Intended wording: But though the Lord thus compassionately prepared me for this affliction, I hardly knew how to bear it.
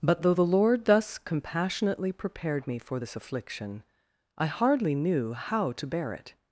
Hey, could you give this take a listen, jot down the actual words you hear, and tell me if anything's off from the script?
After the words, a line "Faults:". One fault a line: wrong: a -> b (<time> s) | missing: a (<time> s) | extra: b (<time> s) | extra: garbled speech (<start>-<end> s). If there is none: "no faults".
But though the Lord thus compassionately prepared me for this affliction, I hardly knew how to bear it.
Faults:
no faults